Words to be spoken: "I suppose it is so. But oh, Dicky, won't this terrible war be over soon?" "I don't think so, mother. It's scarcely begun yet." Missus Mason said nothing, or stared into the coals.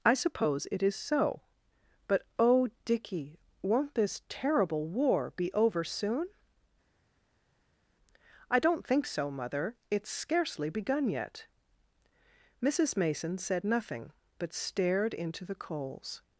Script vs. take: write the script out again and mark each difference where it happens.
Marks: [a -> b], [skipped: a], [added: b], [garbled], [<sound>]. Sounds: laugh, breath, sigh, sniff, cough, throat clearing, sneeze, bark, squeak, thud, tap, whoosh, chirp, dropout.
"I suppose it is so. But oh, Dicky, won't this terrible war be over soon?" "I don't think so, mother. It's scarcely begun yet." Missus Mason said nothing, [or -> but] stared into the coals.